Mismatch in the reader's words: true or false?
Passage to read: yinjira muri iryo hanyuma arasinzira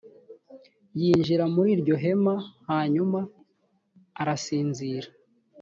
true